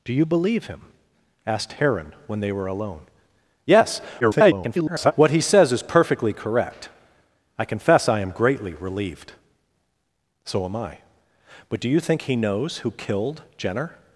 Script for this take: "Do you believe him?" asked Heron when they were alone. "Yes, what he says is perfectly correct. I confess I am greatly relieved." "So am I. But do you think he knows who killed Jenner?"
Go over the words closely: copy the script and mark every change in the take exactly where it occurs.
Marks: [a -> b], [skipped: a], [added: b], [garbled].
"Do you believe him?" asked Heron when they were alone. "Yes, [garbled] what he says is perfectly correct. I confess I am greatly relieved." "So am I. But do you think he knows who killed Jenner?"